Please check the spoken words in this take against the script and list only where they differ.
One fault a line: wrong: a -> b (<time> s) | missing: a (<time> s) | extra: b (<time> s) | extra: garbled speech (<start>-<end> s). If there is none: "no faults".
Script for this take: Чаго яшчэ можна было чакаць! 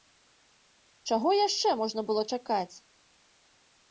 no faults